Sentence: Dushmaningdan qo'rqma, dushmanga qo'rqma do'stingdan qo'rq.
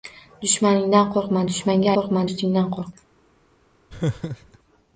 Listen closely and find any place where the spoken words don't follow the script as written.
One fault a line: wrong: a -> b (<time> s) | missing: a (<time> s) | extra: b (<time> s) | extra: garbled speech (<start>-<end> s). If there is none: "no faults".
no faults